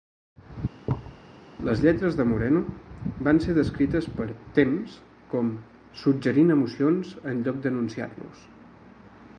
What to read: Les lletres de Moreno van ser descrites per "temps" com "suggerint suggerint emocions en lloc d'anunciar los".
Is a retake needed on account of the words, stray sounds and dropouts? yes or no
yes